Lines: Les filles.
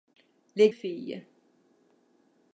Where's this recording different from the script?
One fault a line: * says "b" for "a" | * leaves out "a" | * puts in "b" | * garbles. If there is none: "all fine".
all fine